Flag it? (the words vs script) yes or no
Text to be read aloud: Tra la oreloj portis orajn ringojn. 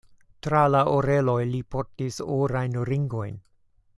yes